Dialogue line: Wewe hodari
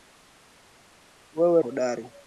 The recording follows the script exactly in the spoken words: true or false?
true